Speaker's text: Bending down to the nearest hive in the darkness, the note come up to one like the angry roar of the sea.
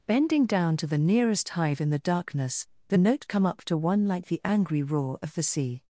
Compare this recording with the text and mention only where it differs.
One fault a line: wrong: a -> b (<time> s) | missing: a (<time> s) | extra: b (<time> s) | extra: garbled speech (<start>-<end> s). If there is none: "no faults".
no faults